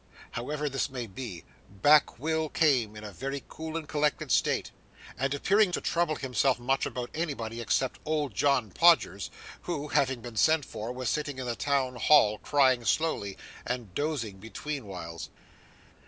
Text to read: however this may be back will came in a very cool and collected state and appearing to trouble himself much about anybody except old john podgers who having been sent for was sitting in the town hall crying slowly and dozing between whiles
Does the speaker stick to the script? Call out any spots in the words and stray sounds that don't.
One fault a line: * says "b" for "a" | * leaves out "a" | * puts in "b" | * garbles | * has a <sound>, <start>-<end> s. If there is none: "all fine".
all fine